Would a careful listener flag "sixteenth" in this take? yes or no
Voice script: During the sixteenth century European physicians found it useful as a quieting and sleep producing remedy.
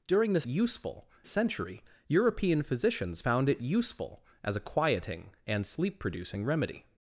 yes